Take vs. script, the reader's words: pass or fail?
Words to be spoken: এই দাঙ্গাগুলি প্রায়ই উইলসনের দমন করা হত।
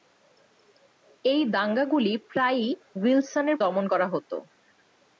pass